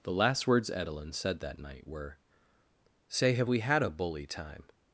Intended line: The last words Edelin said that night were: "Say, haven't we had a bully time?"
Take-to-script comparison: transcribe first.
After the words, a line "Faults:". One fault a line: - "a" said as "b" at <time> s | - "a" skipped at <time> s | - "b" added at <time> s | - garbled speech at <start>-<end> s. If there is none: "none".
The last words Edelin said that night were: "Say, have we had a bully time?"
Faults:
- "haven't" said as "have" at 3.3 s